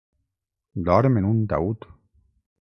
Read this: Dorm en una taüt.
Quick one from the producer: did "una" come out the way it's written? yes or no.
no